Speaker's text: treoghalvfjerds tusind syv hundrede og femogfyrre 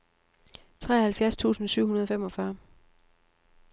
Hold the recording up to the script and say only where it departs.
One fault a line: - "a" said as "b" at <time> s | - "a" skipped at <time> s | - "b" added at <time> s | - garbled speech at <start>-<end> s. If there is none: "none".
none